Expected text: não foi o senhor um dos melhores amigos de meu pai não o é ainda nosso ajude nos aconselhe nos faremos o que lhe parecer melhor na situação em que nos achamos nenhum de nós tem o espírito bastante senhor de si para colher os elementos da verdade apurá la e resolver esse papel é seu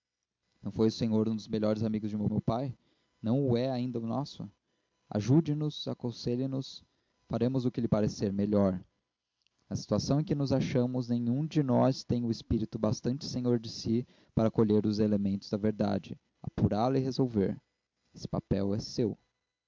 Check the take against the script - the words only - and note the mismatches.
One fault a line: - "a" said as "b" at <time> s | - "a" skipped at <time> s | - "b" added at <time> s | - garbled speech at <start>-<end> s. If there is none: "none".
- "meu" added at 2.3 s